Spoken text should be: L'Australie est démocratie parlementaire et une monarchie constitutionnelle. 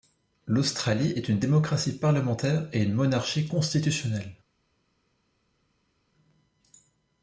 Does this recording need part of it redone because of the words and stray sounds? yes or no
yes